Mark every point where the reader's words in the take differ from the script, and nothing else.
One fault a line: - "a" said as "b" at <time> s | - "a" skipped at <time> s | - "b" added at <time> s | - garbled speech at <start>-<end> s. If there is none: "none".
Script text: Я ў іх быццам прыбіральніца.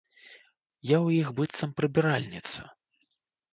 none